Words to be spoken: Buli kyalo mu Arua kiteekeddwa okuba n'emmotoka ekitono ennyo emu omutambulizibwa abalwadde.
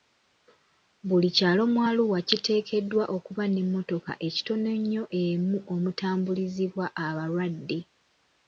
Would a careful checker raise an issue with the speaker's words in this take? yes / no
no